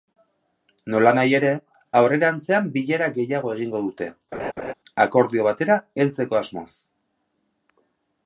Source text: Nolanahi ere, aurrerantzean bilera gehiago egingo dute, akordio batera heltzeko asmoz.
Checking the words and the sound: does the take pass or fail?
fail